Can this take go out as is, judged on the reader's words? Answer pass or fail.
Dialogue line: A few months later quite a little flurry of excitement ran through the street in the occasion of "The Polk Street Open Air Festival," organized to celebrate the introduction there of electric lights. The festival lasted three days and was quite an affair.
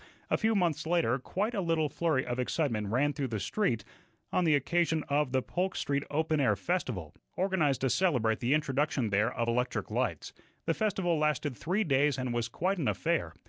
fail